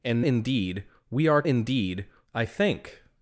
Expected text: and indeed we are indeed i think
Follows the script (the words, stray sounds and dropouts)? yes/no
yes